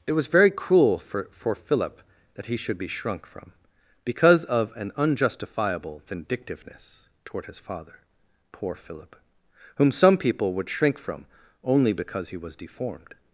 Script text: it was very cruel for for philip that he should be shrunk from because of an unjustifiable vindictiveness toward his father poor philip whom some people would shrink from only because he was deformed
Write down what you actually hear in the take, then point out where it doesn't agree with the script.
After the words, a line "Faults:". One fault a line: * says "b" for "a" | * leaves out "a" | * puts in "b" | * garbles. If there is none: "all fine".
it was very cruel for for philip that he should be shrunk from because of an unjustifiable vindictiveness toward his father poor philip whom some people would shrink from only because he was deformed
Faults:
all fine